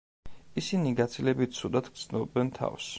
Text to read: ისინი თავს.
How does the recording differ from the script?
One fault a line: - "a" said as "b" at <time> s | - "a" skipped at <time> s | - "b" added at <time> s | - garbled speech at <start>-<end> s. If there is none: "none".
- "გაცილებით ცუდად გრძნობენ" added at 1.0 s